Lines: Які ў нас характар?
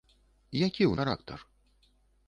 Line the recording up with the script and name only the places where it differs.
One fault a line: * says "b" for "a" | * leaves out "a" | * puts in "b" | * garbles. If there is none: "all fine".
* leaves out "нас"